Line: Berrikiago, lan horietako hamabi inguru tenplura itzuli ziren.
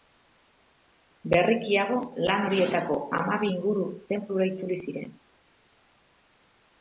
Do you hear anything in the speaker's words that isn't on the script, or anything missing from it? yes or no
no